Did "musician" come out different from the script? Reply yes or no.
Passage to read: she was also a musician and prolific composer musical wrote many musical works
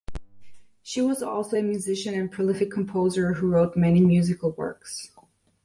no